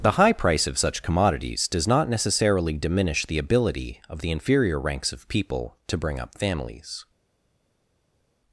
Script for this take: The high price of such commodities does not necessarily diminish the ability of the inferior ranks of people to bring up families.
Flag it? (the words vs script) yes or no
no